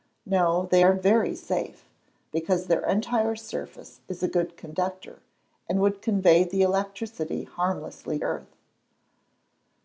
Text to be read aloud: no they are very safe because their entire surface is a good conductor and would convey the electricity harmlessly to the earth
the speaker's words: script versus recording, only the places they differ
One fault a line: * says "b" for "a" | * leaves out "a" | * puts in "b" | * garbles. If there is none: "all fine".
* leaves out "to the"